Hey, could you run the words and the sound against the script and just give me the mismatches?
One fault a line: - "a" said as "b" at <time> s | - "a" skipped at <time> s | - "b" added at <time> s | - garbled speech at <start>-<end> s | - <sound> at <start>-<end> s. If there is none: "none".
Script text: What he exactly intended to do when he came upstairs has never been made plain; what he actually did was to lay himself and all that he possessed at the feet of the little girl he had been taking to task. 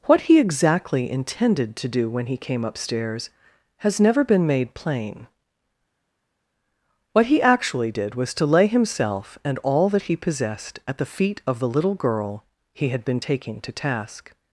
none